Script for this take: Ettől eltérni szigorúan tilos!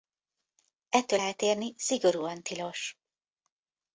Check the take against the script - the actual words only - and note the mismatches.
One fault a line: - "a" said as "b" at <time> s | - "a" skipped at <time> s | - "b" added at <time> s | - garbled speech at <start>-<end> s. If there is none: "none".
none